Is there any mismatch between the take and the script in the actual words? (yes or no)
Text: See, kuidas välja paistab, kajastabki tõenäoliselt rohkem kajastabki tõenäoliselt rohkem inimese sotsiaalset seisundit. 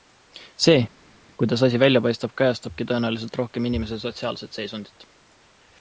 yes